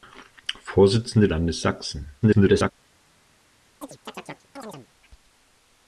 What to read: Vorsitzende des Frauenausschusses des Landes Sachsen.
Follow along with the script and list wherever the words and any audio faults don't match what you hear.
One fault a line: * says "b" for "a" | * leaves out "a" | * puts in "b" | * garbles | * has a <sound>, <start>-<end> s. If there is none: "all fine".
* leaves out "des Frauenausschusses des"
* garbles
* has a chirp, 3.8-4.9 s